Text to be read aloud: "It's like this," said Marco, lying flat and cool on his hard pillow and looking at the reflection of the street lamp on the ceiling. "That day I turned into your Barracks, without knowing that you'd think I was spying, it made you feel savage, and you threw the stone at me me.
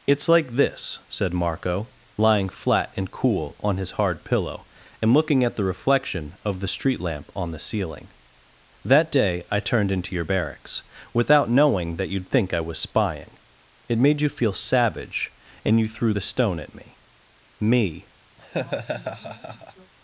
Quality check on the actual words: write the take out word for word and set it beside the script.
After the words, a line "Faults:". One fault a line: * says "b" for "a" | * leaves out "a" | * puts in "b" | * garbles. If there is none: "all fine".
"It's like this," said Marco, lying flat and cool on his hard pillow and looking at the reflection of the street lamp on the ceiling. "That day I turned into your Barracks, without knowing that you'd think I was spying, it made you feel savage, and you threw the stone at me me.
Faults:
all fine